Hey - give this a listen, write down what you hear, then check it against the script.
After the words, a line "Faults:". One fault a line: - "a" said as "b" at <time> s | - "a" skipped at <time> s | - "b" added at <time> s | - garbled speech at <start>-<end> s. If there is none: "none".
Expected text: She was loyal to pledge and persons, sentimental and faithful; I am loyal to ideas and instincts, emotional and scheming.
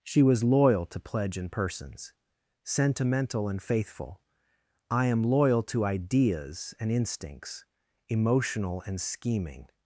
She was loyal to pledge and persons, sentimental and faithful; I am loyal to ideas and instincts, emotional and scheming.
Faults:
none